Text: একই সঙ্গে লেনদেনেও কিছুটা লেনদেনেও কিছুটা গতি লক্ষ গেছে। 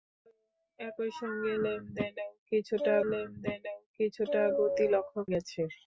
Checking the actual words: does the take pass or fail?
pass